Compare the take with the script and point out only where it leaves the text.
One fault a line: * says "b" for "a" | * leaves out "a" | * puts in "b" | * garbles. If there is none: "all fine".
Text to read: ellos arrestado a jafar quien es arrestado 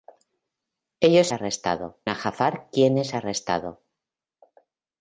all fine